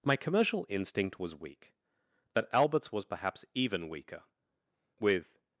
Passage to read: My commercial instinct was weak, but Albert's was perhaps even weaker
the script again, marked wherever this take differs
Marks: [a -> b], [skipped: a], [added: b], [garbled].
My commercial instinct was weak, but Albert's was perhaps even weaker [added: With]